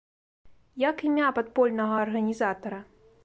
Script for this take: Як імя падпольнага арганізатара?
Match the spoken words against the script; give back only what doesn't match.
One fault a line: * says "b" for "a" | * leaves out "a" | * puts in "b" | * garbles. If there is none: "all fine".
all fine